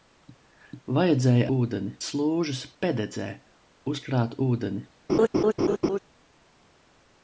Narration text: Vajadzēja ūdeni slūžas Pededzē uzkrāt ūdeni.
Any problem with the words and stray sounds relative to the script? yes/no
yes